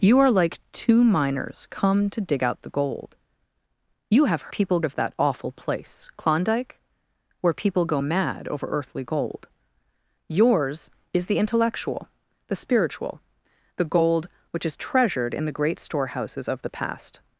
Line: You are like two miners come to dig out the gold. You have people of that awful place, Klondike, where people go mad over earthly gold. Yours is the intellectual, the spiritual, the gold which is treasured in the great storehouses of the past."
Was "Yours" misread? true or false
false